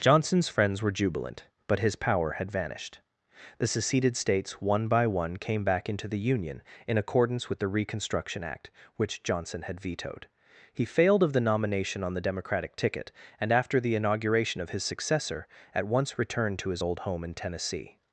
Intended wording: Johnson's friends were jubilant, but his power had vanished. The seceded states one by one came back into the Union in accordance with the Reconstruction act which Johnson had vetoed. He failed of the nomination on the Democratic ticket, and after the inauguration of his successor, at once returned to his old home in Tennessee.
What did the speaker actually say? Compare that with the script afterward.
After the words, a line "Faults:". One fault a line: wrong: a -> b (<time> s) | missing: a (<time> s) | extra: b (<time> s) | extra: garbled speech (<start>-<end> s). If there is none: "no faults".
Johnson's friends were jubilant, but his power had vanished. The seceded states one by one came back into the Union in accordance with the Reconstruction act which Johnson had vetoed. He failed of the nomination on the Democratic ticket, and after the inauguration of his successor, at once returned to his old home in Tennessee.
Faults:
no faults